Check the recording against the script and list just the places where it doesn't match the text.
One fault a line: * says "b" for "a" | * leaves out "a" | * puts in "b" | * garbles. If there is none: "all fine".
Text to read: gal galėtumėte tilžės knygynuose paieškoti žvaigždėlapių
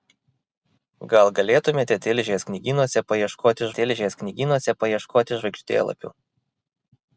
* puts in "tilžės knygynuose paieškoti"